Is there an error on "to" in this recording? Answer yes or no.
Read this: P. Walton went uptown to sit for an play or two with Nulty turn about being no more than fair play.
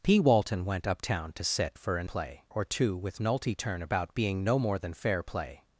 no